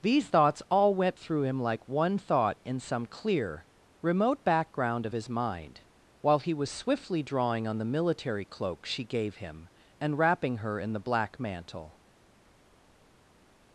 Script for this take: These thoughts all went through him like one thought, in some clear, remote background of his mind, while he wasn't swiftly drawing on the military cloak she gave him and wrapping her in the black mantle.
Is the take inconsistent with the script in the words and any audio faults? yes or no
yes